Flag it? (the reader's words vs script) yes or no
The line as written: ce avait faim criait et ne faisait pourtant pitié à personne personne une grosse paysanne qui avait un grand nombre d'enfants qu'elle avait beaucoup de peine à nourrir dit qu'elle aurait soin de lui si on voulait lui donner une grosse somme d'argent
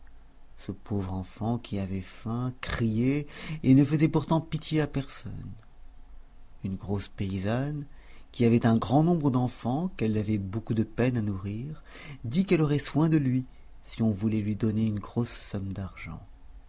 yes